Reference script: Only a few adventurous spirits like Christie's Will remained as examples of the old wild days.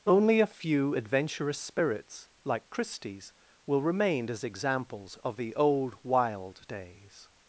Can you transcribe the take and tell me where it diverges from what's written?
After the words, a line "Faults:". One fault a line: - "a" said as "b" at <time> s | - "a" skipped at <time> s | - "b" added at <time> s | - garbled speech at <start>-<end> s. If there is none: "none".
Only a few adventurous spirits like Christie's Will remain as examples of the old wild days.
Faults:
- "remained" said as "remain" at 3.8 s